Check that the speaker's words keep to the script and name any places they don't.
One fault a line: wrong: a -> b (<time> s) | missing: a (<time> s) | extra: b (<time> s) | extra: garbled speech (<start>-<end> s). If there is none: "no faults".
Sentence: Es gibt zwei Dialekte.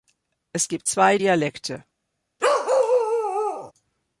no faults